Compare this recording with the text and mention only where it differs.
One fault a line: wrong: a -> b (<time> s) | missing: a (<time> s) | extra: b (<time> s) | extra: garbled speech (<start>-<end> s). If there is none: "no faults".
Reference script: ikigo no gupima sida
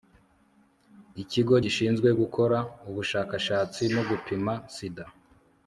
extra: gishinzwe gukora ubushakashatsi (1.6 s)